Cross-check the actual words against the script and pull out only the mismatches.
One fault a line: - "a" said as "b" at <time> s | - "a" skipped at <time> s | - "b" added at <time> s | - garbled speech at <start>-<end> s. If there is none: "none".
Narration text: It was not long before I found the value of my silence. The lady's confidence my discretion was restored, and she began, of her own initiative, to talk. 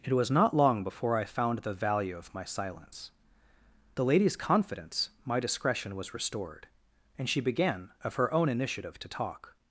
none